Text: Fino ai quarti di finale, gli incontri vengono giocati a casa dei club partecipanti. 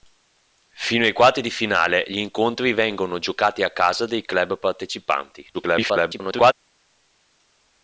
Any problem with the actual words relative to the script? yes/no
yes